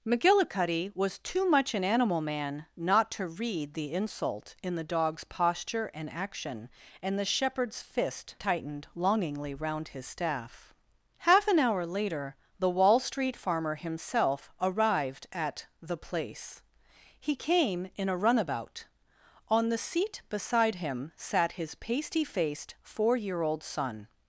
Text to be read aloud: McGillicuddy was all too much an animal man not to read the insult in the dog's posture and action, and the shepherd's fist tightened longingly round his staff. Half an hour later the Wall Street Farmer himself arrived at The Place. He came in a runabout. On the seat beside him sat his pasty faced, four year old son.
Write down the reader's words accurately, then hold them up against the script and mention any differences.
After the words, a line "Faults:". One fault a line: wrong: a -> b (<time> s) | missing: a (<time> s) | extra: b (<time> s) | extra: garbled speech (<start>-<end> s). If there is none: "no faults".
McGillicuddy was too much an animal man not to read the insult in the dog's posture and action, and the shepherd's fist tightened longingly round his staff. Half an hour later the Wall Street Farmer himself arrived at The Place. He came in a runabout. On the seat beside him sat his pasty faced, four year old son.
Faults:
missing: all (1.2 s)